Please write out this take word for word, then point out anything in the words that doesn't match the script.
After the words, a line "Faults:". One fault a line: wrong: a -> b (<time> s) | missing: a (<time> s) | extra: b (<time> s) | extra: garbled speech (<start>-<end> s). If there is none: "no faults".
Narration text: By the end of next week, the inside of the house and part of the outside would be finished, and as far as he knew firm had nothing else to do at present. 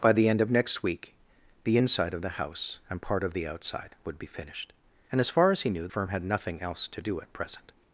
By the end of next week, the inside of the house and part of the outside would be finished, and as far as he knew firm had nothing else to do at present.
Faults:
no faults